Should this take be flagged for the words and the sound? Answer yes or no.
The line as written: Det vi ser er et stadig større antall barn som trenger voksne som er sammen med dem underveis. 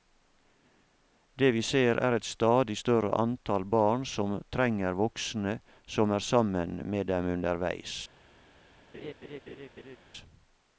yes